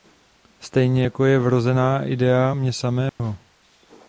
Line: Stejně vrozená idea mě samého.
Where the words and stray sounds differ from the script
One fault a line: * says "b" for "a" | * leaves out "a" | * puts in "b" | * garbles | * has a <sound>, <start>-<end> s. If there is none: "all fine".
* puts in "jako je"
* has a dropout, 3.1-3.2 s